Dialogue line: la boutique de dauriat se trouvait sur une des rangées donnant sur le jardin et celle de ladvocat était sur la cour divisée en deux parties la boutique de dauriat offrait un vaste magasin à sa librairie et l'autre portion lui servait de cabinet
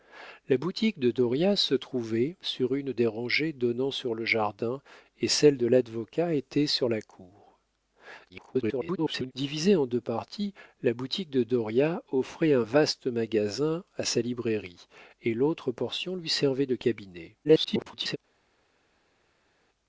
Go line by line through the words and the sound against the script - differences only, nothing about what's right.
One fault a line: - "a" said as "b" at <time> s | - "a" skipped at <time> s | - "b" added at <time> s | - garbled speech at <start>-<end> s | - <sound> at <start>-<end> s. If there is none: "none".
- garbled speech at 8.3-9.3 s
- garbled speech at 17.4-18.2 s